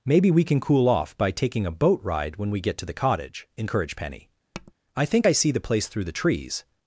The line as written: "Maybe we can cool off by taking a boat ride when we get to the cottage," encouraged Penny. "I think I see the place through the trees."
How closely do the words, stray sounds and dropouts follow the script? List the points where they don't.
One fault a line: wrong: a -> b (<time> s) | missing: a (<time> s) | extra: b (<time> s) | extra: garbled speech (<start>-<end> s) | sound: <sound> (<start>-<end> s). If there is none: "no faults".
sound: tap (4.5-4.7 s)